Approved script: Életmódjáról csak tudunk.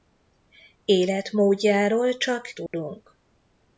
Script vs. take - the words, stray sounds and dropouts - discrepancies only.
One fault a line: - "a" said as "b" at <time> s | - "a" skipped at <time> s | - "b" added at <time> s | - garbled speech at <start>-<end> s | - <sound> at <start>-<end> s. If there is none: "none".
- dropout at 2.7-2.7 s